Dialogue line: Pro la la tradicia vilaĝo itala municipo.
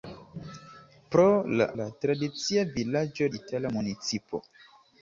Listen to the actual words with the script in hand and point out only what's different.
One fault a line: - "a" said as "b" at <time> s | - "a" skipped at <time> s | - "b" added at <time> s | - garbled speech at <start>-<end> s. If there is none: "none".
none